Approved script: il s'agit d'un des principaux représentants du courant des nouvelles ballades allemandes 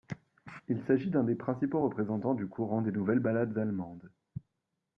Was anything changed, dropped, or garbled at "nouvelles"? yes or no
no